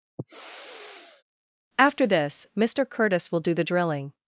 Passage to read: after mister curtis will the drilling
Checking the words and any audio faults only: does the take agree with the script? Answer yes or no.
no